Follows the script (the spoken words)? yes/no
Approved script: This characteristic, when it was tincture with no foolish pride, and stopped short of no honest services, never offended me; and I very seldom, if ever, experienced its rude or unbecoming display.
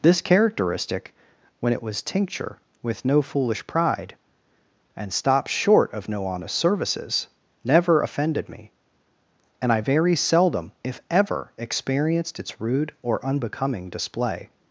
yes